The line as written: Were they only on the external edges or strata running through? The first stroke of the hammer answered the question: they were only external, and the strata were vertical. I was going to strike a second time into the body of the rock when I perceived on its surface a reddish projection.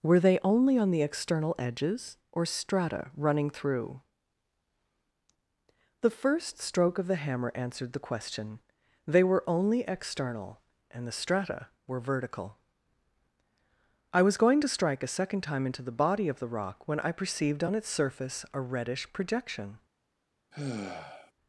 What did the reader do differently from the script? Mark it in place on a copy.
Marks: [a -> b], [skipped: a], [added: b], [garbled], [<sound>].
Were they only on the external edges or strata running through? The first stroke of the hammer answered the question: they were only external, and the strata were vertical. I was going to strike a second time into the body of the rock when I perceived on its surface a reddish projection. [sigh]